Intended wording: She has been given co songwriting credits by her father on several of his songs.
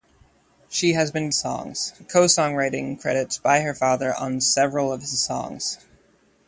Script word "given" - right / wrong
wrong